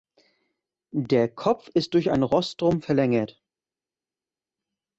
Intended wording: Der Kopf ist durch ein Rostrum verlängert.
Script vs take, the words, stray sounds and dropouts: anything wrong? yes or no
no